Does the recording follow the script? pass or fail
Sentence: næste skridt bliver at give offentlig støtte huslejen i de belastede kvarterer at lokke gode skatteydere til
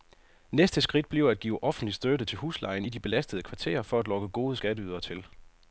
fail